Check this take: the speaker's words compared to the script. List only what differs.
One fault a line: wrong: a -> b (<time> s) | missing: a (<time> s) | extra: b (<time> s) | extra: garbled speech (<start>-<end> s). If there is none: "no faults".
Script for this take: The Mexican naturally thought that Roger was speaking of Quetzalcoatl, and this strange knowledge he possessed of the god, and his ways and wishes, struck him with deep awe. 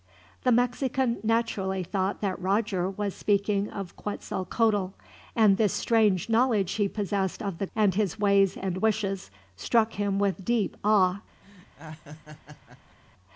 missing: god (7.7 s)